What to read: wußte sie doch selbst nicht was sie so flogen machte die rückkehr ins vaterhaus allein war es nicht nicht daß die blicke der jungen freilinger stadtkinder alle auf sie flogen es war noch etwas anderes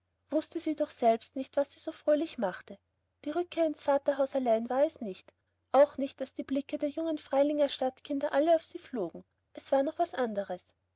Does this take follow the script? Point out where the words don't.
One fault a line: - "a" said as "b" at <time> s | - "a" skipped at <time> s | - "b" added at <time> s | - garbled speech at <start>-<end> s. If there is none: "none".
- "flogen" said as "fröhlich" at 1.9 s
- "auch" added at 5.7 s